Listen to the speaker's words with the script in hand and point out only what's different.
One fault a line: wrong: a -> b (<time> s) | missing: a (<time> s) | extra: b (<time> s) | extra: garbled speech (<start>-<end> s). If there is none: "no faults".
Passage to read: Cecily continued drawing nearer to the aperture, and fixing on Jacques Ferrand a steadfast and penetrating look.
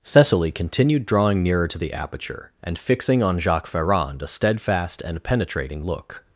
no faults